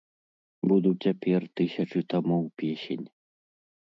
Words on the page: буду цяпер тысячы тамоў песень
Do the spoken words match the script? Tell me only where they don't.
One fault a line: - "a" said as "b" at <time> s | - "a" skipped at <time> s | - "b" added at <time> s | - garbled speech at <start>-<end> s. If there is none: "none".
none